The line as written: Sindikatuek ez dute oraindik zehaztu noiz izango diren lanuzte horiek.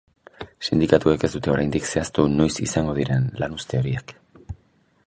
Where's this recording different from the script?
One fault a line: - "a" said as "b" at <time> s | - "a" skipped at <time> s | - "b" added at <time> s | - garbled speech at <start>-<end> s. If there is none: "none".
none